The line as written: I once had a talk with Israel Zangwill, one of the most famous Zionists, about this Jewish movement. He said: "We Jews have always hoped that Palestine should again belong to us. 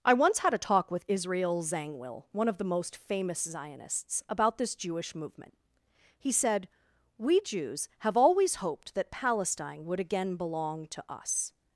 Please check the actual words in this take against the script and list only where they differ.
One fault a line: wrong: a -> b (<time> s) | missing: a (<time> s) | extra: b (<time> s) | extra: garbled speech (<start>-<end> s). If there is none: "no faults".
wrong: should -> would (9.8 s)